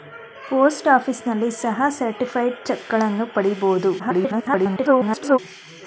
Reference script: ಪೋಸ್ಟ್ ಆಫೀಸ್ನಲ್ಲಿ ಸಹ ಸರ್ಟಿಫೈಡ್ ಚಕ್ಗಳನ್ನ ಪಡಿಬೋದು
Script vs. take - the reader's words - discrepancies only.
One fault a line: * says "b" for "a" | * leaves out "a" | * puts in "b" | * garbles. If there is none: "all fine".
* garbles